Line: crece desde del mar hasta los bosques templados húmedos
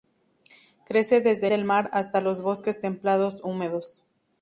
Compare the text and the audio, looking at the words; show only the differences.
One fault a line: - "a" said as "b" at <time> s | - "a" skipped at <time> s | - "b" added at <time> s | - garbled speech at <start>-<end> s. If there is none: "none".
none